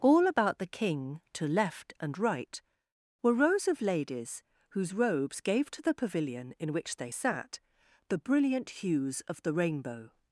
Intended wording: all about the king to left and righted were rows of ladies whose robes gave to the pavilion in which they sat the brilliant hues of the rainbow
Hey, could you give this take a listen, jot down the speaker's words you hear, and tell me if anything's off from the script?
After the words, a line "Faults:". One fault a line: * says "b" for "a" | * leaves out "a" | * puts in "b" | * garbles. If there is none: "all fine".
all about the king to left and right were rows of ladies whose robes gave to the pavilion in which they sat the brilliant hues of the rainbow
Faults:
* says "right" for "righted"